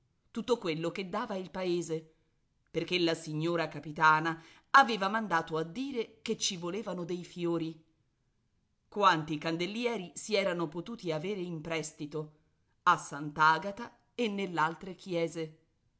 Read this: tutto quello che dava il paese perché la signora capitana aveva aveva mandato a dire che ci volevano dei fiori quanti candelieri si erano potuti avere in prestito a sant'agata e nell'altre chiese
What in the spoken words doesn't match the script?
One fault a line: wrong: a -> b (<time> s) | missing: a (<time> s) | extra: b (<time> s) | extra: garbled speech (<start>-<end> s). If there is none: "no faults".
missing: aveva (5.1 s)